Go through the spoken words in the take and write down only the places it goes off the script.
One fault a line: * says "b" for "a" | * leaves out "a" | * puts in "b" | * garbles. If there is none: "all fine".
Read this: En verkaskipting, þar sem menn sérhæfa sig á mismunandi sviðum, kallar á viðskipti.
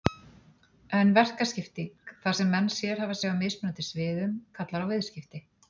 all fine